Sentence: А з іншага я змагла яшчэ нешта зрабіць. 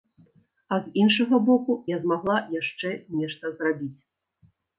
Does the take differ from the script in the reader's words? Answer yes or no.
yes